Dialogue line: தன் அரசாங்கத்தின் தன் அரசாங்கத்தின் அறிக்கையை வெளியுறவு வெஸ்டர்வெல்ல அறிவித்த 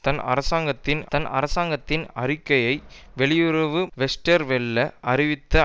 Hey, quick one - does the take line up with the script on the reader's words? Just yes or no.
yes